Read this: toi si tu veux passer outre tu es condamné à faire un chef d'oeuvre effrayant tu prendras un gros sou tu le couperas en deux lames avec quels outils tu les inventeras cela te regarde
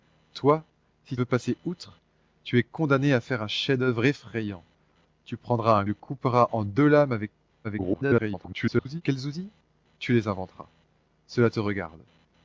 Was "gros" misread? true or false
true